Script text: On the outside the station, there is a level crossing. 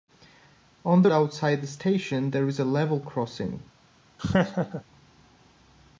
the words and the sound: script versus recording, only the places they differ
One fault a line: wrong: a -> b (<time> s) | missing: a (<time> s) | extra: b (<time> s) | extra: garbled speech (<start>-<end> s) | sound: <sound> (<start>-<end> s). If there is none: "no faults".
sound: laugh (4.2-4.8 s)